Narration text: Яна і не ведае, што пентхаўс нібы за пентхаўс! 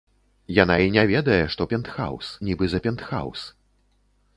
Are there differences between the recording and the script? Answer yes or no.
no